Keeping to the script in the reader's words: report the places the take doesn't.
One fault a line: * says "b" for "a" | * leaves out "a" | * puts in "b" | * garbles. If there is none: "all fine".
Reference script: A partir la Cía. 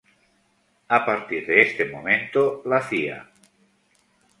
* puts in "de este momento"